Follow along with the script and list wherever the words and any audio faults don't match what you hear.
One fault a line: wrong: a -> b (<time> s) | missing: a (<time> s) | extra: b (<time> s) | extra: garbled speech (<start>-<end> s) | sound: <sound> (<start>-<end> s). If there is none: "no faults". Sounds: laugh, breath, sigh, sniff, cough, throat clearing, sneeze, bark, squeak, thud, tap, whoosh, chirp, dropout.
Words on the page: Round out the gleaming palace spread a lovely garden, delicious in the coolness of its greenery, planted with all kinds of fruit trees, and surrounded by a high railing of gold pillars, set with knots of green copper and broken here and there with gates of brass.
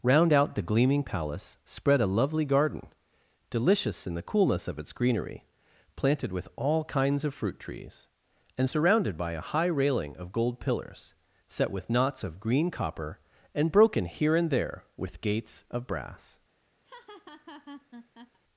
sound: laugh (16.8-18.4 s)